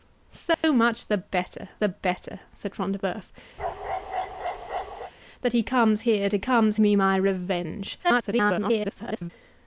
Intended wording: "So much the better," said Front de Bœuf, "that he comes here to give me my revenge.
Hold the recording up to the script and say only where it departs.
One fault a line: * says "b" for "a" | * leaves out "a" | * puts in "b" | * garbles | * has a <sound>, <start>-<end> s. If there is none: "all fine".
* has a dropout, 0.5-0.6 s
* puts in "the better"
* has a bark, 3.6-5.1 s
* says "comes" for "give"
* garbles